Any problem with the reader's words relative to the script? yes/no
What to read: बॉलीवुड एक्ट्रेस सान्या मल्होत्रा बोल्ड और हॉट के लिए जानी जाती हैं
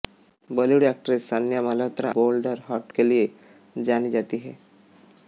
no